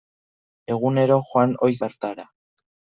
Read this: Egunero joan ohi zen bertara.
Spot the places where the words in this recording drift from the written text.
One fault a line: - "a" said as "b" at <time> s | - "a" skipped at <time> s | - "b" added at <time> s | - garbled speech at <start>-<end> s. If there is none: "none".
- "zen" skipped at 1.8 s